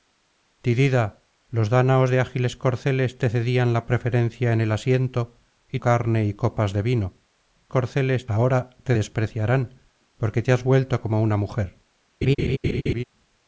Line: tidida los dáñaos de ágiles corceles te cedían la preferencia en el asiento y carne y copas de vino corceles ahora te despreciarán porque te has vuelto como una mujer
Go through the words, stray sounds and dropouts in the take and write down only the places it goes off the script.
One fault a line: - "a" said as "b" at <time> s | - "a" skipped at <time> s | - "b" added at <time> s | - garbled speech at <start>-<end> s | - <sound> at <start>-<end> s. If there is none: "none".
- laugh at 12.2-13.0 s